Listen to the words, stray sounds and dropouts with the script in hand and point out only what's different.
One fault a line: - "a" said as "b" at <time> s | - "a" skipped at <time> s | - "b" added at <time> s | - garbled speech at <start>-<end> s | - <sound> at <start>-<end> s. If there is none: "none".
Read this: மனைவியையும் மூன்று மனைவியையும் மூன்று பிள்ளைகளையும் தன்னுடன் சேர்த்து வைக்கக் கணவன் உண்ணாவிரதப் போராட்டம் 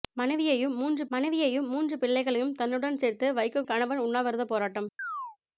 - chirp at 5.0-5.4 s